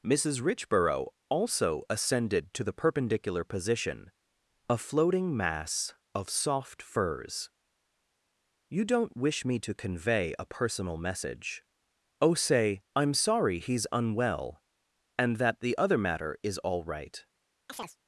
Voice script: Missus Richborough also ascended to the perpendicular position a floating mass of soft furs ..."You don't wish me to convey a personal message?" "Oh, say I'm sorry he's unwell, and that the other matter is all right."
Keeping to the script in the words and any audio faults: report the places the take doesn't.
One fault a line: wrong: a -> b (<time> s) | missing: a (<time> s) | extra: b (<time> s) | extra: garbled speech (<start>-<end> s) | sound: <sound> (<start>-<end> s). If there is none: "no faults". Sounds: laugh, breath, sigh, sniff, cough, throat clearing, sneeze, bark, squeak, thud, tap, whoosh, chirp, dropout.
sound: chirp (17.7-18.0 s)